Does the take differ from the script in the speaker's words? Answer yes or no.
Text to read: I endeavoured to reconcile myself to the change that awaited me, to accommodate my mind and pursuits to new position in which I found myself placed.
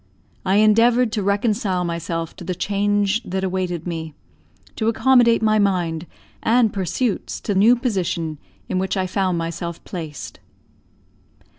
no